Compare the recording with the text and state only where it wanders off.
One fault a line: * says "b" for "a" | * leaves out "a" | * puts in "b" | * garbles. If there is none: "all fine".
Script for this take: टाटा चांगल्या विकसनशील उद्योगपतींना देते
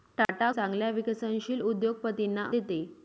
all fine